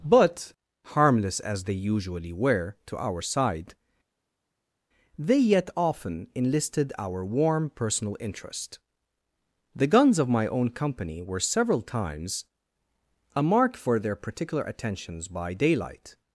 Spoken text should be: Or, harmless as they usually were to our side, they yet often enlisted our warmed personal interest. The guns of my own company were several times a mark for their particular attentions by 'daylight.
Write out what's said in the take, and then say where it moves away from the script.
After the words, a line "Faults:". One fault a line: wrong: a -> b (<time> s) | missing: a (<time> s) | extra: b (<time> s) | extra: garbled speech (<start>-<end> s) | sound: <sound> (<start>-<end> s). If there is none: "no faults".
But, harmless as they usually were to our side, they yet often enlisted our warm personal interest. The guns of my own company were several times a mark for their particular attentions by 'daylight.
Faults:
wrong: Or -> But (0.0 s)
wrong: warmed -> warm (7.2 s)